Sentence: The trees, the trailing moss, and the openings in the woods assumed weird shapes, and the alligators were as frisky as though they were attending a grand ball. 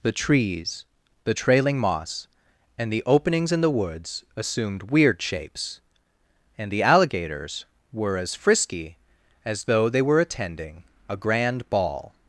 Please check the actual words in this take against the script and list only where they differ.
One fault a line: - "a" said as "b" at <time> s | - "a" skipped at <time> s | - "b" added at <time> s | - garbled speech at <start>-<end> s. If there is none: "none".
none